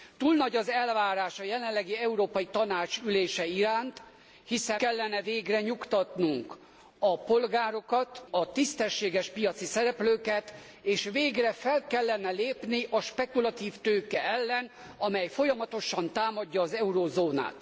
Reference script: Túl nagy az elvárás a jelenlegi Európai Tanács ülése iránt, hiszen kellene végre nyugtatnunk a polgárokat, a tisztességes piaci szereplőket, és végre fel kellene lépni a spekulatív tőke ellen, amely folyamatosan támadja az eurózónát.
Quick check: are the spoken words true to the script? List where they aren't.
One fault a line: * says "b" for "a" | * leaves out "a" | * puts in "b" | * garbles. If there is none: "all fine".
all fine